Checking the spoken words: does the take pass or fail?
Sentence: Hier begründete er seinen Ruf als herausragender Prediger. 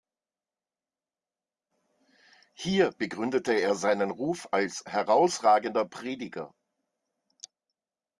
pass